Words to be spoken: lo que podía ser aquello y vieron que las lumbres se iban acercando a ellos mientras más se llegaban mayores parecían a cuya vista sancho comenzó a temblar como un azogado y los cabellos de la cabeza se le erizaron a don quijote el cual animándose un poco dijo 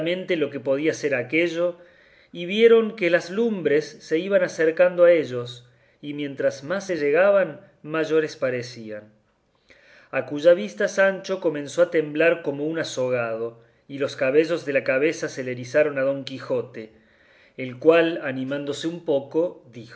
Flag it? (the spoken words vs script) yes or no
yes